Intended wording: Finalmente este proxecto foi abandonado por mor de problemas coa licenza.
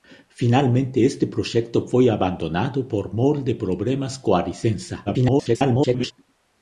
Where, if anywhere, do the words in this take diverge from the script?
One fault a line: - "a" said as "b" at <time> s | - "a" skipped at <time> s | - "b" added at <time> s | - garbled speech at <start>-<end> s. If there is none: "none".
- garbled speech at 5.1-6.1 s